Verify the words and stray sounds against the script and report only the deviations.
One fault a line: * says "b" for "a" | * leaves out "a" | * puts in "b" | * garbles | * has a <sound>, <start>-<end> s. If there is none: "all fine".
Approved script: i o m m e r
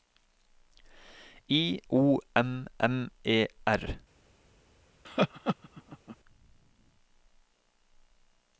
* has a laugh, 5.0-6.2 s